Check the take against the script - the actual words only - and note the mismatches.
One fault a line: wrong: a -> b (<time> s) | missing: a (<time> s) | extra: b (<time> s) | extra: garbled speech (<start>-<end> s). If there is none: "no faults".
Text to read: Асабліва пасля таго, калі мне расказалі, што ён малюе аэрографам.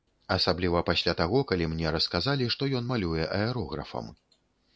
no faults